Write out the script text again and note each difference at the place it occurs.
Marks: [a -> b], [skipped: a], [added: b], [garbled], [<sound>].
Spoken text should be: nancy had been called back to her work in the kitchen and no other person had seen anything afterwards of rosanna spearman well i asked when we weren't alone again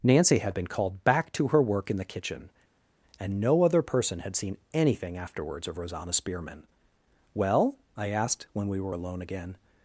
nancy had been called back to her work in the kitchen and no other person had seen anything afterwards of rosanna spearman well i asked when we [weren't -> were] alone again